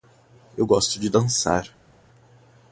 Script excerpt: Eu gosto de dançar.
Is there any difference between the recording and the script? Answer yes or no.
no